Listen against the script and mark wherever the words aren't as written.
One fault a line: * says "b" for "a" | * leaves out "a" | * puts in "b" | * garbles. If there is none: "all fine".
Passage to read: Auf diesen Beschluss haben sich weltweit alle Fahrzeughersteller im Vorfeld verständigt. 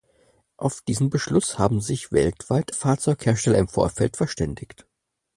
* leaves out "alle"